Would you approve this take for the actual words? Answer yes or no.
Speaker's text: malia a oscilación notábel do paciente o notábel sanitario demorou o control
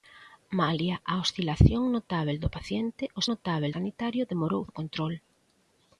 yes